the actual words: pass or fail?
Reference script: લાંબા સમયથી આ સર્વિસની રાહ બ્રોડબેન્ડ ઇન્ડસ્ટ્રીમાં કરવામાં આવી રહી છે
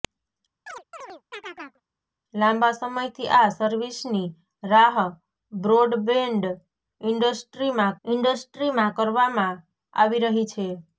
fail